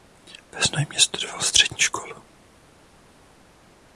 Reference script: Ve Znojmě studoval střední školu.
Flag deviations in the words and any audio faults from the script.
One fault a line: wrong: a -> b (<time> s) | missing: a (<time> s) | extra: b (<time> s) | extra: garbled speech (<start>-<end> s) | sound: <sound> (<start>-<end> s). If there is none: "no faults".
no faults